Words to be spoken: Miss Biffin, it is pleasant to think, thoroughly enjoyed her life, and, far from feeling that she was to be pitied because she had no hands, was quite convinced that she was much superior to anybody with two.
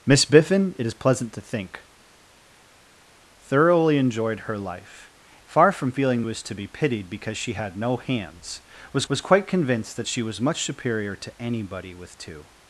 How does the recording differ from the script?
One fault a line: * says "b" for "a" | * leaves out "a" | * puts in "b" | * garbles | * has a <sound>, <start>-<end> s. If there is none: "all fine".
* leaves out "and"
* leaves out "that she"
* puts in "was"